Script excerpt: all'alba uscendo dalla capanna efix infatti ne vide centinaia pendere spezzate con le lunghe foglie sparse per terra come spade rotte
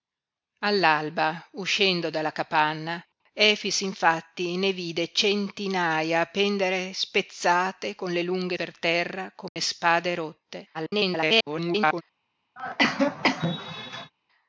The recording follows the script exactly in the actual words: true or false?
false